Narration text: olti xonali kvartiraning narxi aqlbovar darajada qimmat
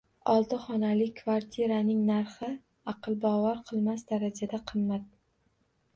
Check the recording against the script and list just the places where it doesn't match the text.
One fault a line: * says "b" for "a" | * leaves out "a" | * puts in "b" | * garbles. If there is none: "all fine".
* puts in "qilmas"